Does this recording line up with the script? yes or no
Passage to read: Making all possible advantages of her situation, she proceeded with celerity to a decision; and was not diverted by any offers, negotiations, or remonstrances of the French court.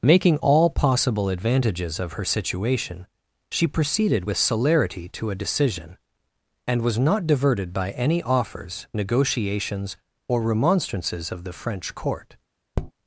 yes